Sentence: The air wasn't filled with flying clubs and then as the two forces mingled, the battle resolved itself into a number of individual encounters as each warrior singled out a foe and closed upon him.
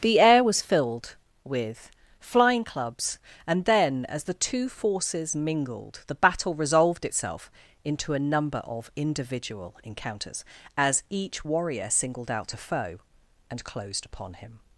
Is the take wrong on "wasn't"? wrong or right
wrong